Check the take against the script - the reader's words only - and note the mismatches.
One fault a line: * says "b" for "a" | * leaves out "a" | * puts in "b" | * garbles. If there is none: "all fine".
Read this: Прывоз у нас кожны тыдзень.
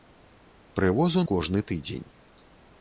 * leaves out "нас"